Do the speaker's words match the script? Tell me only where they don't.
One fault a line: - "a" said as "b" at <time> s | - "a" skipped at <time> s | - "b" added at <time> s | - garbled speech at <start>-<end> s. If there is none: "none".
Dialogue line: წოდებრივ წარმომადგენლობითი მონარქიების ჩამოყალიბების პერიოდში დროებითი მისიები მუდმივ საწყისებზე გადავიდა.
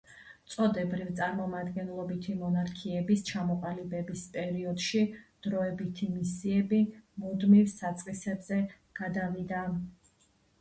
none